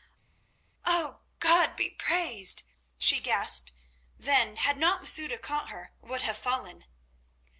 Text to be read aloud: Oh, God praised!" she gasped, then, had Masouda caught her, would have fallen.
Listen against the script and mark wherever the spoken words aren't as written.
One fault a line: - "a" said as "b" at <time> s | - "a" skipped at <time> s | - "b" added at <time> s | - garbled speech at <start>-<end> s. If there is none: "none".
- "be" added at 1.8 s
- "not" added at 4.8 s